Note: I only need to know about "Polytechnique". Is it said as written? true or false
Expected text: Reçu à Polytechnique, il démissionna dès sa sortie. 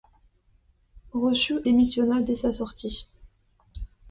false